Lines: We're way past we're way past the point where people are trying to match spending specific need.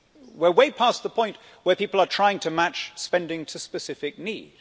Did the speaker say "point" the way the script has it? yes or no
yes